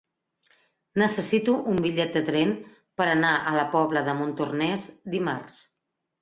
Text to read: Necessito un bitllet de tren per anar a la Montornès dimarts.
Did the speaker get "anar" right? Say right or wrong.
right